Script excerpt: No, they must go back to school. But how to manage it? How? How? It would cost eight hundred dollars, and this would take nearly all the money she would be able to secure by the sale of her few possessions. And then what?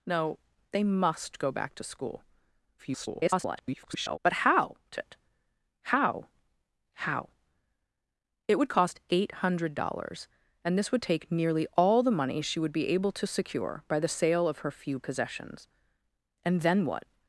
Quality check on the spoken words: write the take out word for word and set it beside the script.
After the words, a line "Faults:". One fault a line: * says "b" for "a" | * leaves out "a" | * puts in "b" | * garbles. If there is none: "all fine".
No, they must go back to school. [garbled] But how to it? How? How? It would cost eight hundred dollars, and this would take nearly all the money she would be able to secure by the sale of her few possessions. And then what?
Faults:
* garbles
* leaves out "manage"